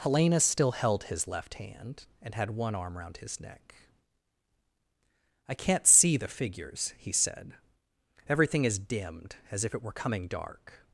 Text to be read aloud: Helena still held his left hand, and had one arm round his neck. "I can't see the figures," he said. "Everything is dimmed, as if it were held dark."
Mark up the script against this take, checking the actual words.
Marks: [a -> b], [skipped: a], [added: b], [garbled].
Helena still held his left hand, and had one arm round his neck. "I can't see the figures," he said. "Everything is dimmed, as if it were [held -> coming] dark."